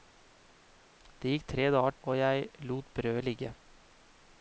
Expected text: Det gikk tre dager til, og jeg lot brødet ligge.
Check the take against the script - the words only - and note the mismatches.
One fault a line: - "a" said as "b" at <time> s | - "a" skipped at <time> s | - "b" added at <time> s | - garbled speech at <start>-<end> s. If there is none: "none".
- "til" skipped at 2.0 s